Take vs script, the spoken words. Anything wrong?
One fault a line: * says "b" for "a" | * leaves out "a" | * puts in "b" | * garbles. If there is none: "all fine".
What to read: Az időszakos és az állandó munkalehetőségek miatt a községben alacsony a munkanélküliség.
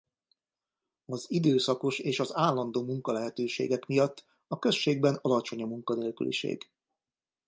all fine